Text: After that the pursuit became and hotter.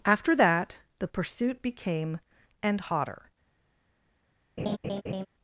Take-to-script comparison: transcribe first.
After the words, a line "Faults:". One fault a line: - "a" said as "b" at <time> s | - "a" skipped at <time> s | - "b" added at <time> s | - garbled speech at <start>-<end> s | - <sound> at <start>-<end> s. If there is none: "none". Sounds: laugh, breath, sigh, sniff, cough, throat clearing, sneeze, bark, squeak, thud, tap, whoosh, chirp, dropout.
After that the pursuit became and hotter.
Faults:
- laugh at 4.6-5.3 s